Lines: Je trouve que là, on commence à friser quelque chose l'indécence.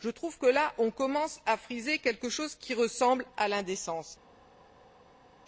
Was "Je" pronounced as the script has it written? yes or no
yes